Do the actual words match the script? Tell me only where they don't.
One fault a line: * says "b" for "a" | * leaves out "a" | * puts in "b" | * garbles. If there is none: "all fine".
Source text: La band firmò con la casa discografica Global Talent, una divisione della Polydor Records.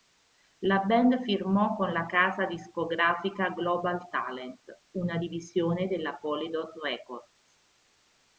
all fine